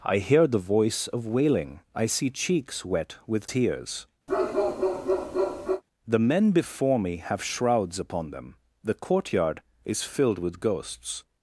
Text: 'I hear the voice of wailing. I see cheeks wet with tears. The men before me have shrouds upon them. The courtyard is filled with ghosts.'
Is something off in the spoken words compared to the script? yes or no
no